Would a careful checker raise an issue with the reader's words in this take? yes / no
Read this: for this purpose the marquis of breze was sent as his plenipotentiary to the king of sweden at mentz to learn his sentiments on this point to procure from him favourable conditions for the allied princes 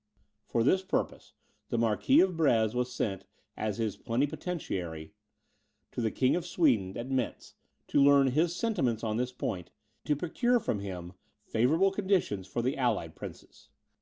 no